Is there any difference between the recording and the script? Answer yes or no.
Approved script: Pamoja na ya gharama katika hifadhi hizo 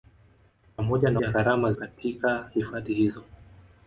no